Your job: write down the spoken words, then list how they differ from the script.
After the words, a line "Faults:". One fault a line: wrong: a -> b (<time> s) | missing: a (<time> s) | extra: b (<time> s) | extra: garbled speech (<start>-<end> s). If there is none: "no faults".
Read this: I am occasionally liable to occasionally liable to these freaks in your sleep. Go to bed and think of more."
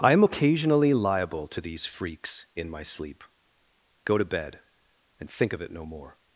I am occasionally liable to these freaks in my sleep. Go to bed and think of it no more."
Faults:
missing: occasionally liable to (1.6 s)
wrong: your -> my (2.7 s)
extra: it no (5.6 s)